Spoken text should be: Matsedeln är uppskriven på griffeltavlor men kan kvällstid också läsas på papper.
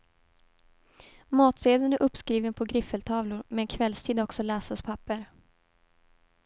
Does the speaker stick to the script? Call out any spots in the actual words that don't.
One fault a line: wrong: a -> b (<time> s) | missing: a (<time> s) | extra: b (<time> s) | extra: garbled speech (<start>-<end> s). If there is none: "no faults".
missing: kan (3.7 s)
missing: på (4.8 s)